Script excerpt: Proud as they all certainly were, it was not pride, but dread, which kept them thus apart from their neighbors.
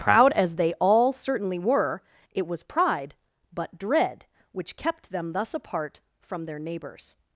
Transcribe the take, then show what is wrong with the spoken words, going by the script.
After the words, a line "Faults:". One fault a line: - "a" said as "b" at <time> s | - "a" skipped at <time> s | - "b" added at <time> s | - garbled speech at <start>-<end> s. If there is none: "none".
Proud as they all certainly were, it was pride, but dread, which kept them thus apart from their neighbors.
Faults:
- "not" skipped at 2.6 s